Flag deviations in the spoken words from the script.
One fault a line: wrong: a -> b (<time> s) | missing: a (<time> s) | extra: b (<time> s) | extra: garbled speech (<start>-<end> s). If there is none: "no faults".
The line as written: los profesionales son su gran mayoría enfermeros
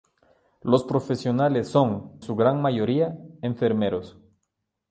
no faults